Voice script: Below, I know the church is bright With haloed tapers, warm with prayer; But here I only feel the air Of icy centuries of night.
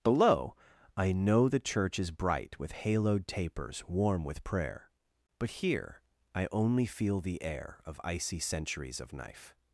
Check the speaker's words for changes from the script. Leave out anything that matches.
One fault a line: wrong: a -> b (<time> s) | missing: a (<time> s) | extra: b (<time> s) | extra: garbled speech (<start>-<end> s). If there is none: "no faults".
wrong: night -> knife (9.1 s)